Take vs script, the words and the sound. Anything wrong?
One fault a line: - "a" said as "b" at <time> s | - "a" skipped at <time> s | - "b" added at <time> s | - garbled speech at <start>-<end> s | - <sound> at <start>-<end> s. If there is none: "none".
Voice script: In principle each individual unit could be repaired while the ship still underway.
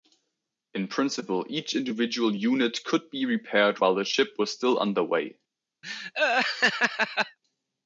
- "was" added at 4.4 s
- laugh at 5.8-7.4 s